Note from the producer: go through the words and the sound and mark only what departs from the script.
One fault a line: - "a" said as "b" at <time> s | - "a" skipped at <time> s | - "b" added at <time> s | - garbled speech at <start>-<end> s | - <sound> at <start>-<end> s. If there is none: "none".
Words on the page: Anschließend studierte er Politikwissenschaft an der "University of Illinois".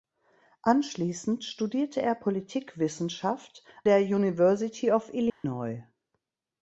- "an" skipped at 3.6 s
- dropout at 5.3-5.4 s